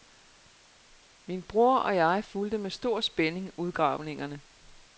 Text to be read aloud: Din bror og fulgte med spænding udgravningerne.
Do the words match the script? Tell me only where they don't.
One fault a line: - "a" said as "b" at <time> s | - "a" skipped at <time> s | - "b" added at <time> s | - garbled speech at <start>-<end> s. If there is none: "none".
- "Din" said as "Min" at 1.2 s
- "jeg" added at 1.9 s
- "stor" added at 2.7 s